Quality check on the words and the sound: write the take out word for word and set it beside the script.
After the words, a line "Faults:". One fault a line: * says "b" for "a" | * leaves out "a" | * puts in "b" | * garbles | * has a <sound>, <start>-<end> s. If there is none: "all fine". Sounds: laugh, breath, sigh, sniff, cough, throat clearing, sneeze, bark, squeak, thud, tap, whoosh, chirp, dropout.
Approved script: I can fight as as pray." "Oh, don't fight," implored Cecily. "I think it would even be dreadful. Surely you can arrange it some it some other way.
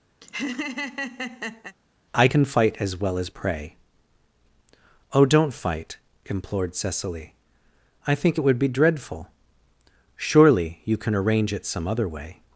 I can fight as well as pray." "Oh, don't fight," implored Cecily. "I think it would be dreadful. Surely you can arrange it some other way.
Faults:
* has a laugh, 0.2-1.8 s
* puts in "well"
* leaves out "even"
* leaves out "it some"